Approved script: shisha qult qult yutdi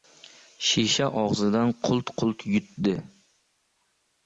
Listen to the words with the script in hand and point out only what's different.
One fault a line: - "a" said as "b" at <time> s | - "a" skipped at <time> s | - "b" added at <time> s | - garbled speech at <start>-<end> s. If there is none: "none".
- "og‘zidan" added at 1.2 s